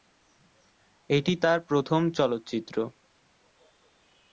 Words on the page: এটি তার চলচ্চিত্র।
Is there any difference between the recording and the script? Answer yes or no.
yes